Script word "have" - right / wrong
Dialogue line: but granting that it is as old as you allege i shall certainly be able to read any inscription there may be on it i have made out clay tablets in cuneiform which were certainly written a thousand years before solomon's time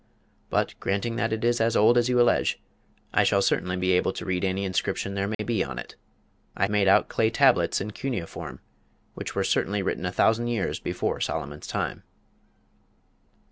wrong